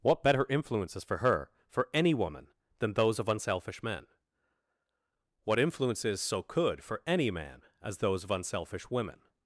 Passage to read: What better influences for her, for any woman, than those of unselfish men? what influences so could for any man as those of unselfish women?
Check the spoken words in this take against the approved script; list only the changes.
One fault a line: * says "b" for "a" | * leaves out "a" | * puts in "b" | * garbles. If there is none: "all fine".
all fine